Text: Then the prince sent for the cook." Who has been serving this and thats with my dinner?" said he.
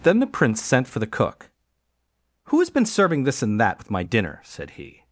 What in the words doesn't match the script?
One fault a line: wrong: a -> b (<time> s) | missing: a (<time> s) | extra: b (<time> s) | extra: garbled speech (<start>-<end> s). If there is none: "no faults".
wrong: thats -> that (3.6 s)